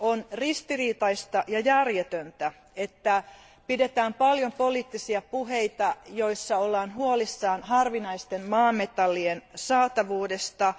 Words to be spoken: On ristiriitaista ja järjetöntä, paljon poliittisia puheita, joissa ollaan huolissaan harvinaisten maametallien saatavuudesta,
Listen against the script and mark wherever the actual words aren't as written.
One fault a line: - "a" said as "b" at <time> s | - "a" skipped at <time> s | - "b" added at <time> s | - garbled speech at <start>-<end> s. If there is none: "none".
- "että pidetään" added at 2.8 s